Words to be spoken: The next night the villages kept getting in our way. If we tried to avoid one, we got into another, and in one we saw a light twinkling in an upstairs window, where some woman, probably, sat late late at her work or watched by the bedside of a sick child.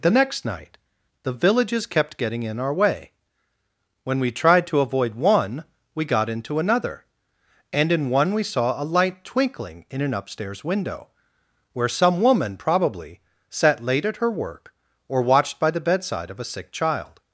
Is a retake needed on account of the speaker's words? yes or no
yes